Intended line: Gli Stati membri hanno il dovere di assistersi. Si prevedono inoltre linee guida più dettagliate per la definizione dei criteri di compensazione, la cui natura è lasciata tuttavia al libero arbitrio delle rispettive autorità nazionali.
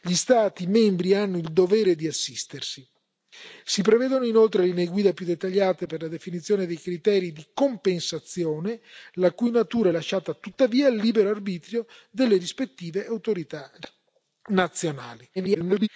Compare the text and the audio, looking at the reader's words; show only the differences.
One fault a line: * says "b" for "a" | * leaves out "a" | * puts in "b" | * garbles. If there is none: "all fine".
* garbles